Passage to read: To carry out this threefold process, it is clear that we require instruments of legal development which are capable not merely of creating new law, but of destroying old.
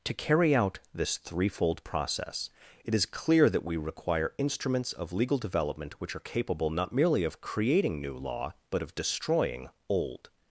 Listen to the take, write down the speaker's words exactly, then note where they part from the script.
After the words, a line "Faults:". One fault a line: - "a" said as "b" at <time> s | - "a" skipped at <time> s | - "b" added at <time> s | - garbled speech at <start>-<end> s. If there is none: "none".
To carry out this threefold process, it is clear that we require instruments of legal development which are capable not merely of creating new law, but of destroying old.
Faults:
none